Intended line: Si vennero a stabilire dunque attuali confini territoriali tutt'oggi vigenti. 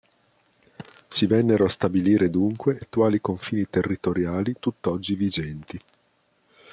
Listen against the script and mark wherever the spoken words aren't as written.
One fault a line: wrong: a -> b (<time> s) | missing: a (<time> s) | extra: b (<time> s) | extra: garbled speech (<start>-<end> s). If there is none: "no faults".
no faults